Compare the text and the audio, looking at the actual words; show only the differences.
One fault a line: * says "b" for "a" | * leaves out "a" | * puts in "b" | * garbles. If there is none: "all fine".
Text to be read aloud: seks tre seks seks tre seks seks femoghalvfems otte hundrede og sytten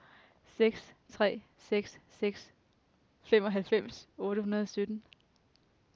* leaves out "tre seks seks"